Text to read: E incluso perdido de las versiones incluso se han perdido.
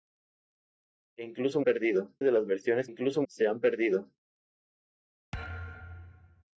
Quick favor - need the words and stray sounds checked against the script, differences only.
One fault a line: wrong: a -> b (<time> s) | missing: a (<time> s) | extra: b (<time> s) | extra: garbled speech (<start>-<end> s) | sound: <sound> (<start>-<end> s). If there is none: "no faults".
sound: thud (5.3-6.4 s)